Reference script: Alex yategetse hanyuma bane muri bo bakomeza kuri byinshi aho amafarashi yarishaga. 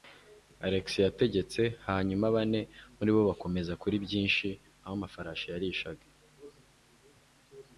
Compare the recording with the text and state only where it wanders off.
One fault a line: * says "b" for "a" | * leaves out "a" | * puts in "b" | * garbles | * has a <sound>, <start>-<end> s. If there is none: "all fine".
all fine